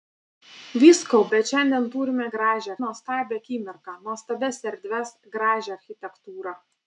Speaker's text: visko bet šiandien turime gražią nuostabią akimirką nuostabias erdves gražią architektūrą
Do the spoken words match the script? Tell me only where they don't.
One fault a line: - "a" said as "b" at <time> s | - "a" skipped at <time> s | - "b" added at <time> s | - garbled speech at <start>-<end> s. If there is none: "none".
none